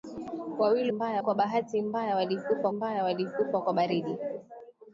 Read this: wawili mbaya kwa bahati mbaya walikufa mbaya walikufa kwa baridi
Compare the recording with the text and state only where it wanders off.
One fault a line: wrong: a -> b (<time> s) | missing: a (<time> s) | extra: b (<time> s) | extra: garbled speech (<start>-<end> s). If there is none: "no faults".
no faults